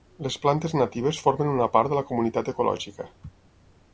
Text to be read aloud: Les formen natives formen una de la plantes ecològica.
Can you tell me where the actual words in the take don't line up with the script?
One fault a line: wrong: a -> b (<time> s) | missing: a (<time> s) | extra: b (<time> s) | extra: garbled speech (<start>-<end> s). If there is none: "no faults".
wrong: formen -> plantes (0.5 s)
extra: part (1.8 s)
wrong: plantes -> comunitat (2.1 s)